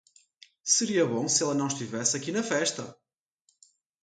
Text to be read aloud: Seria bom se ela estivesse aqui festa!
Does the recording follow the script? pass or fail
fail